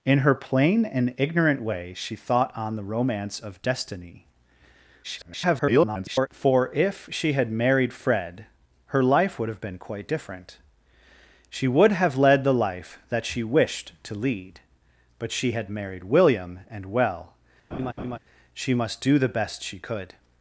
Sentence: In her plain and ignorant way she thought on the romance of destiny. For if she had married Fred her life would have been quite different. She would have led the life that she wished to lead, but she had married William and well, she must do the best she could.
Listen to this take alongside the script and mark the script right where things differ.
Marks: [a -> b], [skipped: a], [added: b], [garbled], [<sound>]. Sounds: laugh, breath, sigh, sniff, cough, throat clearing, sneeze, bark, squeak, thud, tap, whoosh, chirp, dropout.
In her plain and ignorant way she thought on the romance of destiny. [garbled] For if she had married Fred her life would have been quite different. She would have led the life that she wished to lead, but she had married William and well, [laugh] she must do the best she could.